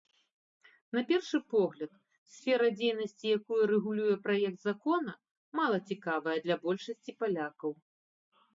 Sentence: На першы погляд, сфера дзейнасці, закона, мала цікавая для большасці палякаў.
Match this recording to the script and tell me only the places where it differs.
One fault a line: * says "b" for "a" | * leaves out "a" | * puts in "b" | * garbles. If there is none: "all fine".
* puts in "якую рэгулюе праект"